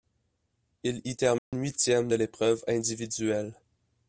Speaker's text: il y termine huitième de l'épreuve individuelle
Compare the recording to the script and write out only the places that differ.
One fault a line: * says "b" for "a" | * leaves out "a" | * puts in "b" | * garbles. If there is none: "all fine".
all fine